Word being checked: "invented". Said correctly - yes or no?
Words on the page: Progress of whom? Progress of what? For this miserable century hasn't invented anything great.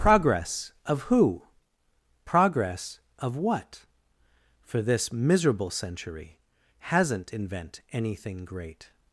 no